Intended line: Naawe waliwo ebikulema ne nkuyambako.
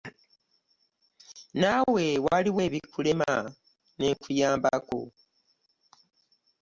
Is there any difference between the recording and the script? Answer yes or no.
no